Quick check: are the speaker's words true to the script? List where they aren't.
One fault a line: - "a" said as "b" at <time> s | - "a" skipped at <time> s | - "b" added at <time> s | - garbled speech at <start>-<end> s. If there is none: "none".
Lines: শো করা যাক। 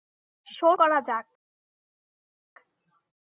none